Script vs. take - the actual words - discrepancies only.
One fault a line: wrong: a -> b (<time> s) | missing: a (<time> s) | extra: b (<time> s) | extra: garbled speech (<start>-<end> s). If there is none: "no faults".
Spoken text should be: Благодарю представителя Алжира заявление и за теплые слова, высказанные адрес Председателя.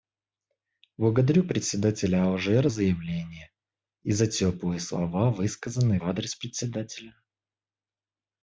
no faults